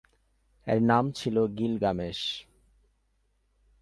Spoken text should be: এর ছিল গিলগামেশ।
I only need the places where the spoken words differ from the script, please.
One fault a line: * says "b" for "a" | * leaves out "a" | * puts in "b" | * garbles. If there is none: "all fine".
* puts in "নাম"